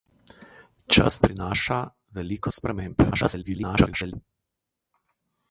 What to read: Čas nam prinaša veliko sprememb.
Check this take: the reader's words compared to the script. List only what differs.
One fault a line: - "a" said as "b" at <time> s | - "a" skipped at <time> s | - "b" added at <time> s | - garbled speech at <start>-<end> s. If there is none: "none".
- "nam" skipped at 1.2 s
- garbled speech at 3.1-4.1 s